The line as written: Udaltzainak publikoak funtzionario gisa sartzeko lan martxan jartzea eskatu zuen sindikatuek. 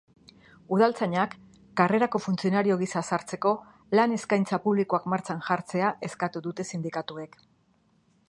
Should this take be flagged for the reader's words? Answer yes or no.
yes